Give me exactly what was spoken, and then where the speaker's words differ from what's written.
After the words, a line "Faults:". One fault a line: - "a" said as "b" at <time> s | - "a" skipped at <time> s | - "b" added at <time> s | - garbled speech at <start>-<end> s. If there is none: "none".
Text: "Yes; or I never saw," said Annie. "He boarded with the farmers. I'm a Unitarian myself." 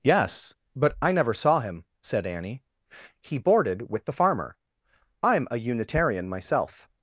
"Yes; but I never saw him," said Annie. "He boarded with the farmer. I'm a Unitarian myself."
Faults:
- "or" said as "but" at 0.8 s
- "him" added at 1.6 s
- "farmers" said as "farmer" at 4.2 s